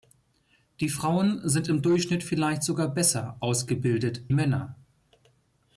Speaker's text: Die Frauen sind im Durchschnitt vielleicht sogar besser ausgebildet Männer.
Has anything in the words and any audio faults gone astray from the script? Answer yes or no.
no